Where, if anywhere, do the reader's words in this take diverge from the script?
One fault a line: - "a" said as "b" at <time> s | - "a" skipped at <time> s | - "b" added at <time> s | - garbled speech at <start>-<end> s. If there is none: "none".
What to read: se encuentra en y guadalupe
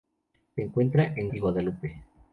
none